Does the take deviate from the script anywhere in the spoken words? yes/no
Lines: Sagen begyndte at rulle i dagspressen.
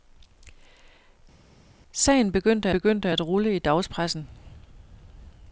yes